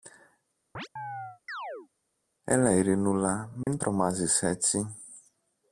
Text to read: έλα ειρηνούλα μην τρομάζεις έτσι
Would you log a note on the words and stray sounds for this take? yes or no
yes